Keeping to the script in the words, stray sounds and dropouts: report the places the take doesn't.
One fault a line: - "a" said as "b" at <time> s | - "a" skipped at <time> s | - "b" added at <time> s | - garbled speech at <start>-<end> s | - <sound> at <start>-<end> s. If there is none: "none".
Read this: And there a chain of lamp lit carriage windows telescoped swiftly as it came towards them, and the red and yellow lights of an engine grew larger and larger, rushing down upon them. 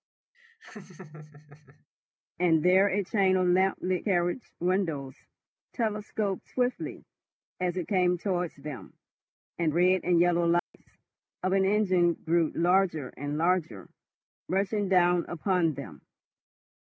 - laugh at 0.3-1.9 s
- "the" skipped at 9.7 s
- dropout at 10.6-10.7 s